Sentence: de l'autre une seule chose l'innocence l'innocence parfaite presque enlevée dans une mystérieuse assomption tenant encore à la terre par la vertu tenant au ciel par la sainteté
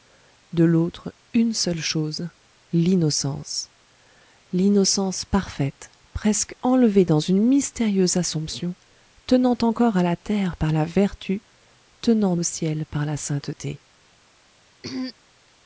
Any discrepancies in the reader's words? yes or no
no